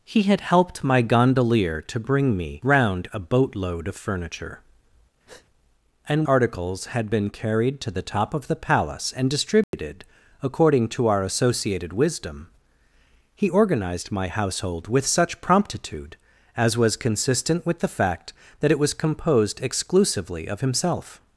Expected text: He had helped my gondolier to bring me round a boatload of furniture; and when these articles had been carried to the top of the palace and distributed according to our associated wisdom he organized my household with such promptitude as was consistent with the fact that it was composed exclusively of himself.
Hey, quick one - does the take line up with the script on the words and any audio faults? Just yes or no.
no